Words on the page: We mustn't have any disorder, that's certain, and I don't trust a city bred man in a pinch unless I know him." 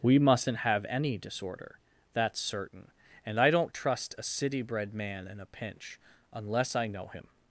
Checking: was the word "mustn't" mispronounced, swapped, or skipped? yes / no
no